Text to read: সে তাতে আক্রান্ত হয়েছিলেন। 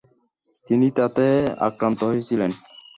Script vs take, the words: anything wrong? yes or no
yes